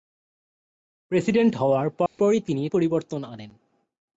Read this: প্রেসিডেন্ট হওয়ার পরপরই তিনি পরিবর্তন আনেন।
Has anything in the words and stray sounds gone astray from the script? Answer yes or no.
yes